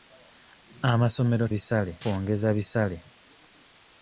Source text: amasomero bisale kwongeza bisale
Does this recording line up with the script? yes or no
yes